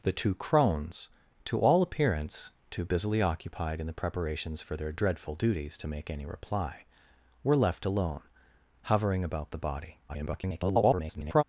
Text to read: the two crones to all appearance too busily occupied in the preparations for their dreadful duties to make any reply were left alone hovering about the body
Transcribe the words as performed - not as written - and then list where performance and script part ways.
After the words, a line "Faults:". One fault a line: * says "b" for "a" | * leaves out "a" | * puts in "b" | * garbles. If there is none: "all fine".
the two crones to all appearance too busily occupied in the preparations for their dreadful duties to make any reply were left alone hovering about the body [garbled]
Faults:
* garbles